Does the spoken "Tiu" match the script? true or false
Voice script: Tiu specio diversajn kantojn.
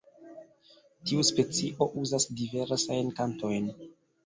true